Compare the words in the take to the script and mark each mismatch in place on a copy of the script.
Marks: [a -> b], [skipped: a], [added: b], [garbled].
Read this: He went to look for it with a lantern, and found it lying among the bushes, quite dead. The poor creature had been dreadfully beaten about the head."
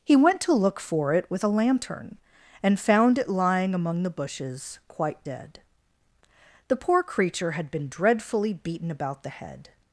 He went to look for it with a lantern, and found it lying among the bushes, quite dead. The poor creature had been dreadfully beaten about the head."